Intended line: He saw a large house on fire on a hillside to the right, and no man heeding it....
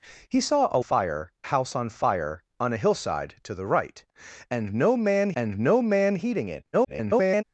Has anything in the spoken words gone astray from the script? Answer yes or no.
yes